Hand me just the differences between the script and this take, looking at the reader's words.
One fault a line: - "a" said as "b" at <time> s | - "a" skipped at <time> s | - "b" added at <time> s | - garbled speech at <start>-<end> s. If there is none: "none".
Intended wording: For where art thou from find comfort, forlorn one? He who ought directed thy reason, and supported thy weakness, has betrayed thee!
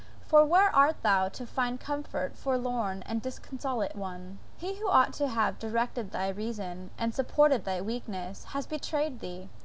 - "from" said as "to" at 1.3 s
- "and disconsolate" added at 3.0 s
- "to have" added at 5.2 s